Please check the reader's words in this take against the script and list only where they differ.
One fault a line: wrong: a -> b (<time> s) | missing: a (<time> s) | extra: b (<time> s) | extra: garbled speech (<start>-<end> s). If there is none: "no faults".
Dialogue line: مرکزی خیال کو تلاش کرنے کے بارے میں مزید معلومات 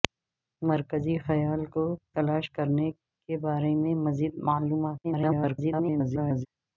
extra: garbled speech (5.0-6.5 s)